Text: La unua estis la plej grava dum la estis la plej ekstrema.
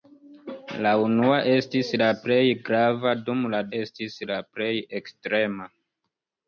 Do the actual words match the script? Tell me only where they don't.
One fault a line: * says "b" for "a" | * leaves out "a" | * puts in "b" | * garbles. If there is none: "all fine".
all fine